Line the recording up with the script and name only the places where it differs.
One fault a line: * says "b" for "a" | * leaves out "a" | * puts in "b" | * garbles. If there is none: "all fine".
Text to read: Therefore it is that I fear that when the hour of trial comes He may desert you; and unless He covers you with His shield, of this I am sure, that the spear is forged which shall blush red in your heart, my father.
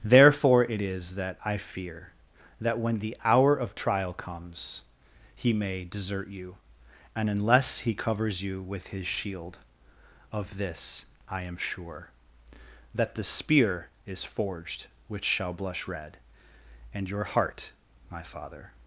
* says "and" for "in"